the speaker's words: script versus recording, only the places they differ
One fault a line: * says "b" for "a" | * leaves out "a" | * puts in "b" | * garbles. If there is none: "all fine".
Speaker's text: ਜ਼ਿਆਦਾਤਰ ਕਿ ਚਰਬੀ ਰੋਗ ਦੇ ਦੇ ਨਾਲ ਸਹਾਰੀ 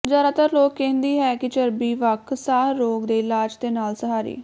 * puts in "ਲੋਕ ਕਹਿੰਦੀ ਹੈ"
* puts in "ਵੱਖ ਸਾਹ"
* puts in "ਇਲਾਜ"